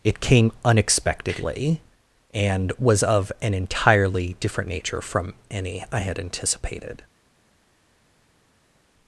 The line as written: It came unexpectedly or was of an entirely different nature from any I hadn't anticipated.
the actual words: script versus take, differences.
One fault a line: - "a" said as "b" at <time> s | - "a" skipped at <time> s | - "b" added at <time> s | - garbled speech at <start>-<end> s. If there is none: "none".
- "or" said as "and" at 2.3 s
- "hadn't" said as "had" at 6.0 s